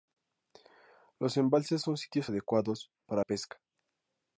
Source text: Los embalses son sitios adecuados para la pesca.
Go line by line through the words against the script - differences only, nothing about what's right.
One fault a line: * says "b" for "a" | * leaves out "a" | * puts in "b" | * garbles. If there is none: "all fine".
* leaves out "la"